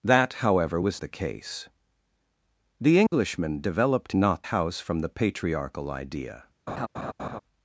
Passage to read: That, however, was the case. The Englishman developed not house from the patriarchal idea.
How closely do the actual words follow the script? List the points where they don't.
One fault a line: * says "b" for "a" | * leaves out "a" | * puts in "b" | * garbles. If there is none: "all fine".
all fine